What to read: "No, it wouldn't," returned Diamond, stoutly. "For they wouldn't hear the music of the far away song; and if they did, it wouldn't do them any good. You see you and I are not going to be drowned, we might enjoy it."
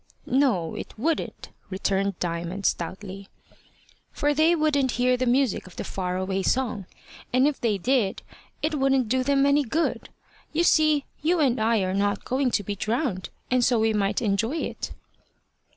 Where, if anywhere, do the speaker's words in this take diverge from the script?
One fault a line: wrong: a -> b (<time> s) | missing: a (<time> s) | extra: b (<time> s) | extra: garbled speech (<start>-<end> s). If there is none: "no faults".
extra: and so (13.5 s)